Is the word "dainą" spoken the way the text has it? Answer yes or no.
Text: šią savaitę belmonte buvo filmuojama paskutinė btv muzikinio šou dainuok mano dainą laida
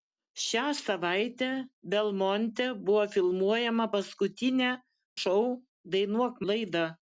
no